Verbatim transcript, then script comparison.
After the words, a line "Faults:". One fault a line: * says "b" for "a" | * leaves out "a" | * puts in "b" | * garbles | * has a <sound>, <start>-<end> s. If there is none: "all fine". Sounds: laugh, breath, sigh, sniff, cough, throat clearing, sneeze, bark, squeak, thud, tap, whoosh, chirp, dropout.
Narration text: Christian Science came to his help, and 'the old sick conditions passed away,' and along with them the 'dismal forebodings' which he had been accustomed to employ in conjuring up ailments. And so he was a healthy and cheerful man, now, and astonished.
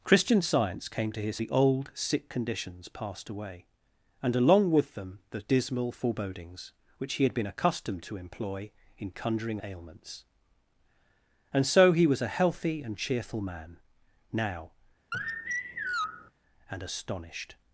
Christian Science came to his 'the old sick conditions passed away,' and along with them the 'dismal forebodings' which he had been accustomed to employ in conjuring ailments. And so he was a healthy and cheerful man, now, and astonished.
Faults:
* leaves out "help and"
* leaves out "up"
* has a sigh, 15.1-16.3 s